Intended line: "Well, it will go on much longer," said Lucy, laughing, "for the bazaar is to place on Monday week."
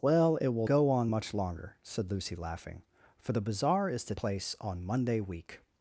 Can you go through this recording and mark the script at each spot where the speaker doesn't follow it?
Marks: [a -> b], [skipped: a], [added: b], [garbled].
"Well, it will go on much longer," said Lucy, laughing, "for the bazaar is to place on Monday week."